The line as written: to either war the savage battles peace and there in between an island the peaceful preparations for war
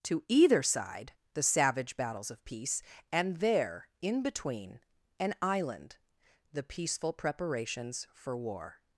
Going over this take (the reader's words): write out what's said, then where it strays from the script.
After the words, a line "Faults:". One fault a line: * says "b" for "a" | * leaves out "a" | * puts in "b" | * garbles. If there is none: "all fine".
to either side the savage battles of peace and there in between an island the peaceful preparations for war
Faults:
* says "side" for "war"
* puts in "of"